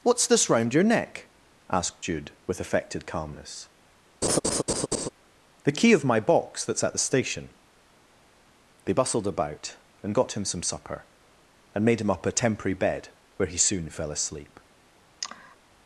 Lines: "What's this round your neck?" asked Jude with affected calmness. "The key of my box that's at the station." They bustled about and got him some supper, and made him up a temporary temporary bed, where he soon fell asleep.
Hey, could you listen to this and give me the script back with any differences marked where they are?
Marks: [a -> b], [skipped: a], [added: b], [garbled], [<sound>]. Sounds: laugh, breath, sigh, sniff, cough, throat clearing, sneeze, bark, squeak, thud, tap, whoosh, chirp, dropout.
"What's this round your neck?" asked Jude with affected calmness. [laugh] "The key of my box that's at the station." They bustled about and got him some supper, and made him up a temporary [skipped: temporary] bed, where he soon fell asleep. [sigh]